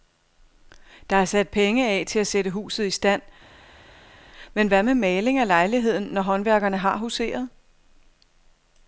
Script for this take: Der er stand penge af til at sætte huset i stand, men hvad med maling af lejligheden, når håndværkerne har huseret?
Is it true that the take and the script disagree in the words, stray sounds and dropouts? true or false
true